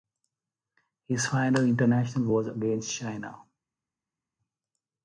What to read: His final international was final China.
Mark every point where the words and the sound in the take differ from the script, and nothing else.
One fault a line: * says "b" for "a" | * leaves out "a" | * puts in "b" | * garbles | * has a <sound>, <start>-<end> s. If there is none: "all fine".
* says "against" for "final"